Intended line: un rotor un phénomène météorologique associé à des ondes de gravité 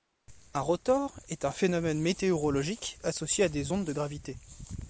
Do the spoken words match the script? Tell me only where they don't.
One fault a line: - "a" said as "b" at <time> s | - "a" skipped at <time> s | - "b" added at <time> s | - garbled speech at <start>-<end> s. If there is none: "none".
- "est" added at 1.3 s